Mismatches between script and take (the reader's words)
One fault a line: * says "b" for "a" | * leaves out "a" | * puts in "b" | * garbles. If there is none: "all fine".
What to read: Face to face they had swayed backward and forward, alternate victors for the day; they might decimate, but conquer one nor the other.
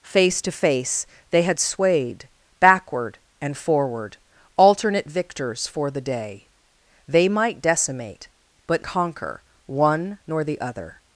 all fine